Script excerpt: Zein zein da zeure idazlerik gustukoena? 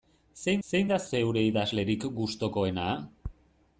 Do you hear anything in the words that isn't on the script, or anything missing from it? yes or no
no